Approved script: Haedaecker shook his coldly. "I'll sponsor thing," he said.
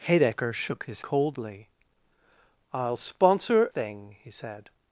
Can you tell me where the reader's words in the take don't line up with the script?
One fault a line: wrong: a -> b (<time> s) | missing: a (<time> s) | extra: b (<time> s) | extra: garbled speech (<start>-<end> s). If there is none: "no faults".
no faults